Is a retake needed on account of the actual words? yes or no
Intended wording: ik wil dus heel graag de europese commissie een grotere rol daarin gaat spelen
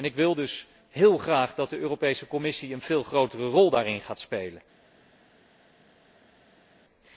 yes